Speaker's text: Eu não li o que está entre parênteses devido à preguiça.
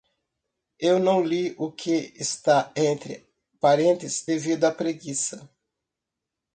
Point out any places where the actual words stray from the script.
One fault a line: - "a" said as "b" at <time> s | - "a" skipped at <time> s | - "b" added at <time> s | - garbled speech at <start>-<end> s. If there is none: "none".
none